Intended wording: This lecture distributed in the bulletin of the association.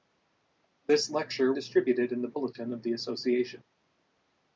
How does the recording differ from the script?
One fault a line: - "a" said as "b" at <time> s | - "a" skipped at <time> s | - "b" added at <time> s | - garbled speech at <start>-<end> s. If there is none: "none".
none